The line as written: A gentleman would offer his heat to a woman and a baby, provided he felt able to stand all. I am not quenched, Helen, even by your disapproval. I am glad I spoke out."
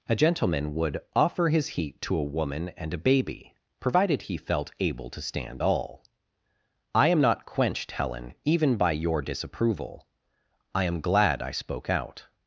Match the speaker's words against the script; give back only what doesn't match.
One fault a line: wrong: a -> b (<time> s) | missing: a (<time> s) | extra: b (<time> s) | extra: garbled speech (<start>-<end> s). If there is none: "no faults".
no faults